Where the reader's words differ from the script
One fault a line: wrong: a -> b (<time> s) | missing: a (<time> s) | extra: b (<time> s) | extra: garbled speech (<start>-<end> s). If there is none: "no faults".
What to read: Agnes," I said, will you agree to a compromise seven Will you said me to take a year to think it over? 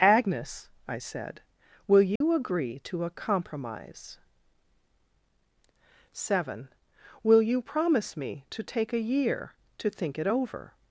wrong: said -> promise (7.6 s)